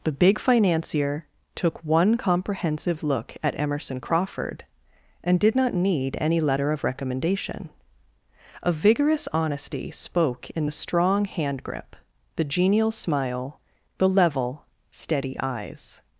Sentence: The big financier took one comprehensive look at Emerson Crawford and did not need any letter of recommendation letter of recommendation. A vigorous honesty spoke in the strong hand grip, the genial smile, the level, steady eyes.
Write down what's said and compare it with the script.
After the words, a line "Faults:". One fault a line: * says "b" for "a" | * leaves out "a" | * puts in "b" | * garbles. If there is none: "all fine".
The big financier took one comprehensive look at Emerson Crawford and did not need any letter of recommendation. A vigorous honesty spoke in the strong hand grip, the genial smile, the level, steady eyes.
Faults:
* leaves out "letter of recommendation"